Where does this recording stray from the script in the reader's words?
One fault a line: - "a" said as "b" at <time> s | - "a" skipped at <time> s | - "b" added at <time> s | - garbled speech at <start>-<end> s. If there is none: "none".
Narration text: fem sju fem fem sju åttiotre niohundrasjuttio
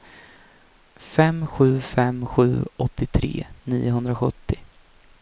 - "fem" skipped at 2.2 s